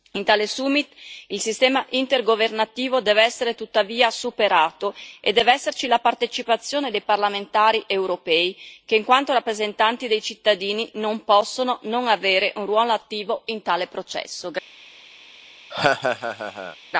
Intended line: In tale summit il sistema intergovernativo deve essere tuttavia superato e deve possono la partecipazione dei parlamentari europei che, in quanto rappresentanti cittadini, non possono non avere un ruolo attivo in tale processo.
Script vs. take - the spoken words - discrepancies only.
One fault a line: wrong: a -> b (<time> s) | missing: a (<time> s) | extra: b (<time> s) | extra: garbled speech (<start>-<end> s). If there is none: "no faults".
wrong: possono -> esserci (5.5 s)
extra: dei (10.1 s)